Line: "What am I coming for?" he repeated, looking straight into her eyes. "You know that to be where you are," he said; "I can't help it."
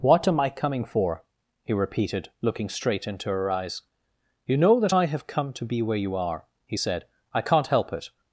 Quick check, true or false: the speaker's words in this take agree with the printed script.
false